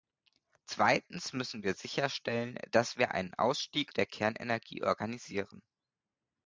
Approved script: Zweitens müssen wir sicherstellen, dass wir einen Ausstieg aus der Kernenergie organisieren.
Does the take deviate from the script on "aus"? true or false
true